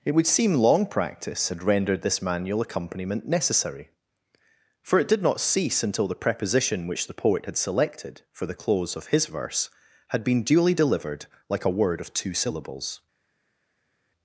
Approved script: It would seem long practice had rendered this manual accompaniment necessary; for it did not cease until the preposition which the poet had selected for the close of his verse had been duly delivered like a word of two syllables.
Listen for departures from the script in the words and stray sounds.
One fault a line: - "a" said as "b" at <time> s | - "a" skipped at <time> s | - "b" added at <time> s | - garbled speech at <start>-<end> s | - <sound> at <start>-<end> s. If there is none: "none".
none